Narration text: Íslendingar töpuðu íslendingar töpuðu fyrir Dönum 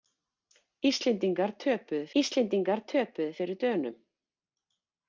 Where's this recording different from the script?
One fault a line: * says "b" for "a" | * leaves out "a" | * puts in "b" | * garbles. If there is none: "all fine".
all fine